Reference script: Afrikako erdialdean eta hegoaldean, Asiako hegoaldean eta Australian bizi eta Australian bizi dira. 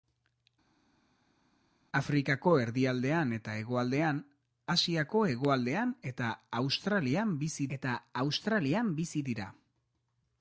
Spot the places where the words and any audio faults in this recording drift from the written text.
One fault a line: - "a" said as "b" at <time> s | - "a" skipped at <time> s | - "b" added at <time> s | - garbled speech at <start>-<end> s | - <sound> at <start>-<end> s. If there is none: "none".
none